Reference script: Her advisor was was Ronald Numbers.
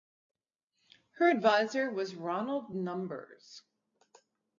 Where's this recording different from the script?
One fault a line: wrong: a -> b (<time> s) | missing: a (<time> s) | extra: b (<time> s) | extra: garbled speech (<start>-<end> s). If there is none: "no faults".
missing: was (2.1 s)